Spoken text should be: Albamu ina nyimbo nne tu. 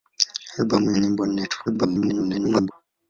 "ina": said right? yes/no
no